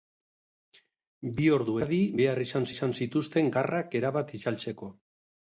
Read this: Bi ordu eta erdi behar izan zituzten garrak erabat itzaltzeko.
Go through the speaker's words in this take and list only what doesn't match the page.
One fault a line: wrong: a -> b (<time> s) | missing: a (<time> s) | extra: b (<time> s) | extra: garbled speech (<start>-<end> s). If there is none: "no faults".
missing: eta (1.8 s)
extra: izan (2.7 s)